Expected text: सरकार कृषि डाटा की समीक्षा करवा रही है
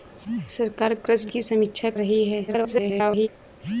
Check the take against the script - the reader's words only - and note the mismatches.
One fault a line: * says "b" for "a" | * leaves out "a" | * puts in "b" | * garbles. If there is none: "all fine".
* leaves out "डाटा"
* leaves out "करवा"
* garbles